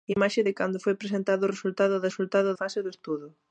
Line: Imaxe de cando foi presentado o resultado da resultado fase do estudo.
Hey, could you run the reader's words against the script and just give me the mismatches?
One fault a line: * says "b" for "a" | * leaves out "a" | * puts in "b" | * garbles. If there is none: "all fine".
all fine